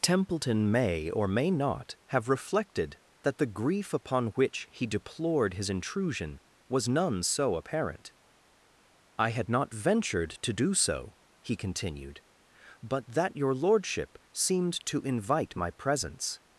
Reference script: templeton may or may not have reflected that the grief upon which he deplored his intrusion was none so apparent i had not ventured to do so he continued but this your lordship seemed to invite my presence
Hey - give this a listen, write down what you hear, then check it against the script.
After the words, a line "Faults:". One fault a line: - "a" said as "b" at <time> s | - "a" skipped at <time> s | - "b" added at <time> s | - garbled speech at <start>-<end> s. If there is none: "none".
templeton may or may not have reflected that the grief upon which he deplored his intrusion was none so apparent i had not ventured to do so he continued but that your lordship seemed to invite my presence
Faults:
- "this" said as "that" at 13.1 s